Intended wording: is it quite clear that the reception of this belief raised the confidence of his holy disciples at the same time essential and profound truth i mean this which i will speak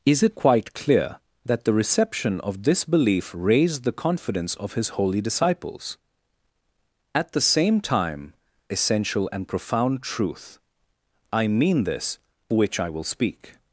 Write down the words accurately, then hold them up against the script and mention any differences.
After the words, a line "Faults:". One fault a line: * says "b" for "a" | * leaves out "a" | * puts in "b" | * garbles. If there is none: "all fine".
is it quite clear that the reception of this belief raised the confidence of his holy disciples at the same time essential and profound truth i mean this which i will speak
Faults:
all fine